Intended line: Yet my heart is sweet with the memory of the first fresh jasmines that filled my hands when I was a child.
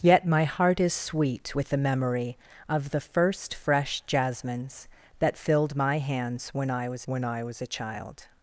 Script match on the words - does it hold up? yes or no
no